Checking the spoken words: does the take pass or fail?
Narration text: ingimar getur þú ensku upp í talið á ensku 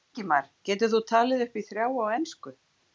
fail